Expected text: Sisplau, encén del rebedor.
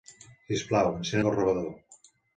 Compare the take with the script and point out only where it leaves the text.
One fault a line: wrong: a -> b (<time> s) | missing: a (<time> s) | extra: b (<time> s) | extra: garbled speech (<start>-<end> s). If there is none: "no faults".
no faults